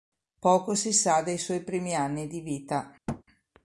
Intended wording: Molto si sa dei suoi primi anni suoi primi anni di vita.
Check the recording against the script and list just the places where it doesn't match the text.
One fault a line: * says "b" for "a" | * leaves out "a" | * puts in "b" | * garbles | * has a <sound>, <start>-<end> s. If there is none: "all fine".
* says "Poco" for "Molto"
* leaves out "suoi primi anni"
* has a thud, 3.1-3.2 s